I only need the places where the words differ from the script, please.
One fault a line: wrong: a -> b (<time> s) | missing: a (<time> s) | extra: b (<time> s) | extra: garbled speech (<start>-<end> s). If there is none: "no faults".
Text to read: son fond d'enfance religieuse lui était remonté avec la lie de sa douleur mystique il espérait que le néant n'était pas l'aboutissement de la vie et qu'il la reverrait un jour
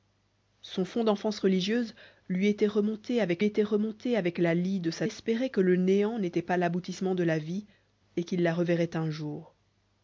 extra: était remonté avec (3.4 s)
missing: douleur mystique il (5.1 s)